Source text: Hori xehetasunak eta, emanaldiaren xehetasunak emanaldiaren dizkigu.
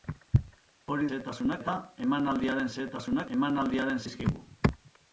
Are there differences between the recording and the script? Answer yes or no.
no